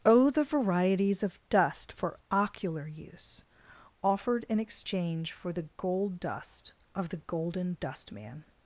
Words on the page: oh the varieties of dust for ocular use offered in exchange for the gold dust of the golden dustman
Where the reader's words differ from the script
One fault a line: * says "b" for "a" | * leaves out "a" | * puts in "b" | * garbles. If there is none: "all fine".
all fine